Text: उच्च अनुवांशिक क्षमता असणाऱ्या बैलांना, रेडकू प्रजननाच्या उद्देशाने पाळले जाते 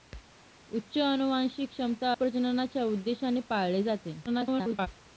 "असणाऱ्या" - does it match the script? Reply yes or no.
no